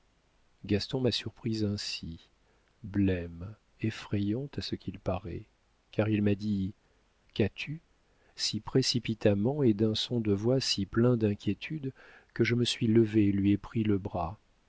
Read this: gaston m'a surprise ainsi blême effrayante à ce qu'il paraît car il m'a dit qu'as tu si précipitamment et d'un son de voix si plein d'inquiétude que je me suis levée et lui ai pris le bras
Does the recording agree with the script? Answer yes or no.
yes